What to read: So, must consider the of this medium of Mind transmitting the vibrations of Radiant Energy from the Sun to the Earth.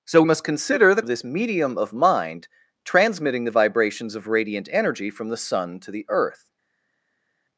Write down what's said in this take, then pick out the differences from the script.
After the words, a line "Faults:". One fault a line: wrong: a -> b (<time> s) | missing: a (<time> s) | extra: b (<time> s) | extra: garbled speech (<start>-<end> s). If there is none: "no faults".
So, must consider the of this medium of Mind transmitting the vibrations of Radiant Energy from the Sun to the Earth.
Faults:
no faults